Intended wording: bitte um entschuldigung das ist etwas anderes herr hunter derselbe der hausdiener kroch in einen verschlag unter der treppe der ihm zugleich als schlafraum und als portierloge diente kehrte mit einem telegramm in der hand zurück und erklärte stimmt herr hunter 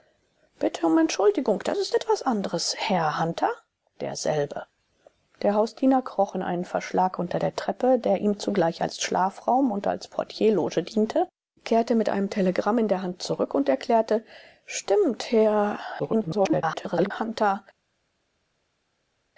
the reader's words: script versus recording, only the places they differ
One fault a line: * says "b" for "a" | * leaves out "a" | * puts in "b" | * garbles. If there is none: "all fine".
* garbles